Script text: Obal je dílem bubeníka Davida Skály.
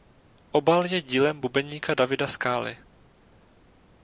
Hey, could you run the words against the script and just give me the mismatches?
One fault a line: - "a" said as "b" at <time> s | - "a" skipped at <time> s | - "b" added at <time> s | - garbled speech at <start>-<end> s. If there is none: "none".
none